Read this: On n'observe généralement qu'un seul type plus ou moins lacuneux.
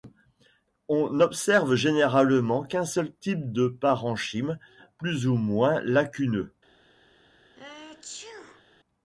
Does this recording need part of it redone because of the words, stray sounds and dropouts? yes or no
yes